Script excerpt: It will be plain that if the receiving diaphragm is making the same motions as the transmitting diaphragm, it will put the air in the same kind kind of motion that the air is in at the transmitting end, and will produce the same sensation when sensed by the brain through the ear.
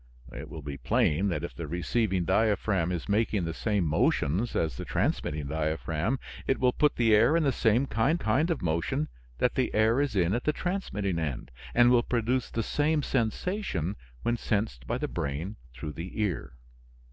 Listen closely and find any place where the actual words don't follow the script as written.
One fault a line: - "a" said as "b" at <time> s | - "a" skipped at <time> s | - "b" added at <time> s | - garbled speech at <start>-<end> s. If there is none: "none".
none